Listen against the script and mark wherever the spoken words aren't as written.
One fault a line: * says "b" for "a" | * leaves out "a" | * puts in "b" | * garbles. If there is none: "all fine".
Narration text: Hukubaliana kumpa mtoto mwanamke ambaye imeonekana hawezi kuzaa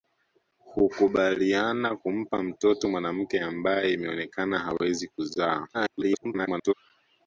* garbles